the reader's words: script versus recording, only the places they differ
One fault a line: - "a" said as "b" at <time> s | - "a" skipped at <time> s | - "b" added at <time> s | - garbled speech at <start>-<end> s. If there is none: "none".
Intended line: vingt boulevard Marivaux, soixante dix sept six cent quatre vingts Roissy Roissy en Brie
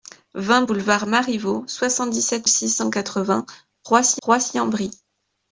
none